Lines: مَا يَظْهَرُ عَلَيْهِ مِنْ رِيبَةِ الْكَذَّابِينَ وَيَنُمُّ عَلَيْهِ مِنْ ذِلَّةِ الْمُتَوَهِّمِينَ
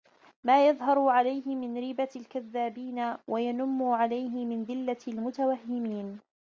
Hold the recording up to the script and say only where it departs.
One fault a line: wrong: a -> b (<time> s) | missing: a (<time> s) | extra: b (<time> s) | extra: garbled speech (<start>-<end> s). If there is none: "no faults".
no faults